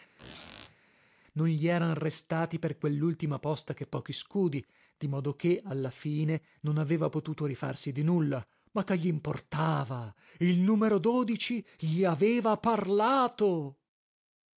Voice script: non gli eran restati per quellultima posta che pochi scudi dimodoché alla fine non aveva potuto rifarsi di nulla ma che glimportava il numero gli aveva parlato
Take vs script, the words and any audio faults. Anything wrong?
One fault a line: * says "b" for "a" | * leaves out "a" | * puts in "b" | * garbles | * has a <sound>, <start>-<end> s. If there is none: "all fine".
* has a squeak, 0.2-0.8 s